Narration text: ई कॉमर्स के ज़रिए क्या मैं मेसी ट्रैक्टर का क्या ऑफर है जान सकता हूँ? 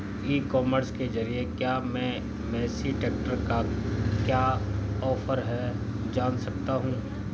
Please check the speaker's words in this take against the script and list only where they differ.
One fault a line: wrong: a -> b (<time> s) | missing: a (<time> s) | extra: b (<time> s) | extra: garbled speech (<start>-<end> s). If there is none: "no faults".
no faults